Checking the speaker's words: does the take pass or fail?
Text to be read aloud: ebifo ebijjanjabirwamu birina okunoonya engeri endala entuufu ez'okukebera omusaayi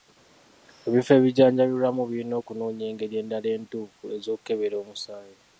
pass